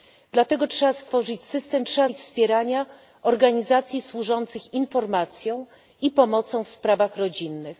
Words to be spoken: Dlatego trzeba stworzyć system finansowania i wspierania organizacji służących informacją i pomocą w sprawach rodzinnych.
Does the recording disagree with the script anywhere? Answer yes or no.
yes